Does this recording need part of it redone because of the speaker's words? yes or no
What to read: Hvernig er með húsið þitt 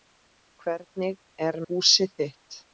yes